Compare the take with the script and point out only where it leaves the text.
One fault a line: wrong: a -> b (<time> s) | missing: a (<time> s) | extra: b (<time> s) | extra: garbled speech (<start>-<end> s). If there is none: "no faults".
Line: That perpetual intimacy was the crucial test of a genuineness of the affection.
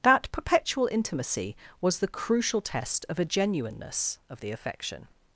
no faults